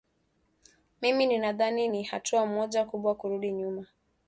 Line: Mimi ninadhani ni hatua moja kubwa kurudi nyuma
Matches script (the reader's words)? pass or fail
pass